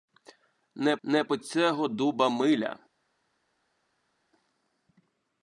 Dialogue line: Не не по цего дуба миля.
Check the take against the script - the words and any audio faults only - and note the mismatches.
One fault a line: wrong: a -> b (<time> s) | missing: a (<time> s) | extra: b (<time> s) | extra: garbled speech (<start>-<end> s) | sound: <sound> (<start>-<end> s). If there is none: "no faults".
no faults